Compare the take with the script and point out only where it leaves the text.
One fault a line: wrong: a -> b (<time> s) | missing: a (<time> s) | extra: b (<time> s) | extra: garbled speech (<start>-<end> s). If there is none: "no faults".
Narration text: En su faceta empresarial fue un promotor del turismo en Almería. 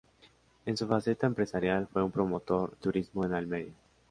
missing: del (2.8 s)